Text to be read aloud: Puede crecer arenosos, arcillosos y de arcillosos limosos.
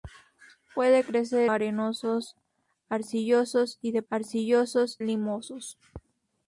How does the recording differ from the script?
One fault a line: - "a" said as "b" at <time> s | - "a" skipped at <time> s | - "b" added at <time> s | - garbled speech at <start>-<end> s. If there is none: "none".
none